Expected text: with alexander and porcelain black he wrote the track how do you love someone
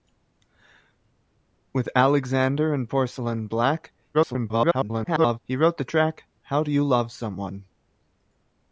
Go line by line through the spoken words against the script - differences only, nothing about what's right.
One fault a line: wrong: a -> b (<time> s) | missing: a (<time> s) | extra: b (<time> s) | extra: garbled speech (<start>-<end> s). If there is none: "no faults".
extra: garbled speech (4.1-5.4 s)